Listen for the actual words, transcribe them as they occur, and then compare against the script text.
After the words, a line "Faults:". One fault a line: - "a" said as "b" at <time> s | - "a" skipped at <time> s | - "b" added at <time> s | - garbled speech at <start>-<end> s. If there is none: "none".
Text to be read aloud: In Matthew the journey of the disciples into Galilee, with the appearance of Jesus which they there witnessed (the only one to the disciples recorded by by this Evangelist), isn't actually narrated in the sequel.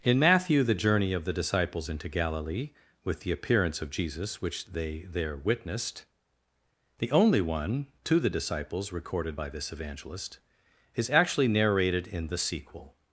In Matthew the journey of the disciples into Galilee, with the appearance of Jesus which they there witnessed (the only one to the disciples recorded by this Evangelist), is actually narrated in the sequel.
Faults:
- "by" skipped at 9.5 s
- "isn't" said as "is" at 10.9 s